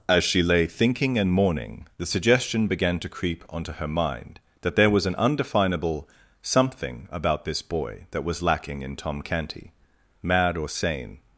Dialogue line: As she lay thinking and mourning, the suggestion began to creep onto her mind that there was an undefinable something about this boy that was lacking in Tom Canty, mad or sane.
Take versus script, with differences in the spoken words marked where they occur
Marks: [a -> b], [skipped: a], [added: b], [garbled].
As she lay thinking and mourning, the suggestion began to creep onto her mind that there was an undefinable something about this boy that was lacking in Tom Canty, mad or sane.